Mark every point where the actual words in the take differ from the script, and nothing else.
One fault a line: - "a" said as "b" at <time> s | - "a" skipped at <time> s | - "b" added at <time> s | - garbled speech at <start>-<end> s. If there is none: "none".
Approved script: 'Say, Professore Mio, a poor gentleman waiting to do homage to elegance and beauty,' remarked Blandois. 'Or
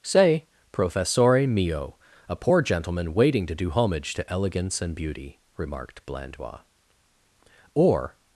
none